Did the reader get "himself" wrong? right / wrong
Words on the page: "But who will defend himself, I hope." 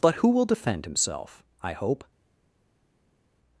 right